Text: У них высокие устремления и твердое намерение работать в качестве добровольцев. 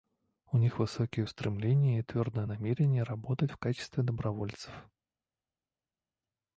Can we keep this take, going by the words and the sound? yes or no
yes